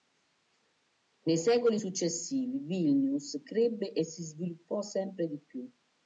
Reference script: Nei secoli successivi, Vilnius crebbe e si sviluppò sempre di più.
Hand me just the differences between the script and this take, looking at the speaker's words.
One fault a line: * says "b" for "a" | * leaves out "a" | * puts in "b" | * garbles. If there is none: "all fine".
all fine